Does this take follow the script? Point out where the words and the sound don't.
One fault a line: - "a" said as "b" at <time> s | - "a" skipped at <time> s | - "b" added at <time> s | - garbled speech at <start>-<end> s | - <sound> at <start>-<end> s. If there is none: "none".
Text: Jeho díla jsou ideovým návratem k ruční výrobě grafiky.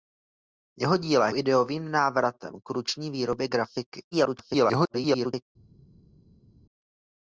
- "jsou" skipped at 1.3 s
- garbled speech at 4.1-5.5 s